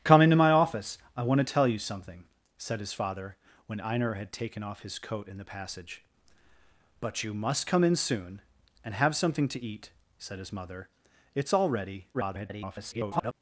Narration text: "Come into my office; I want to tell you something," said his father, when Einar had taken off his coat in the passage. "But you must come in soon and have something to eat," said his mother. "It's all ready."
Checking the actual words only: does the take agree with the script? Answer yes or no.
no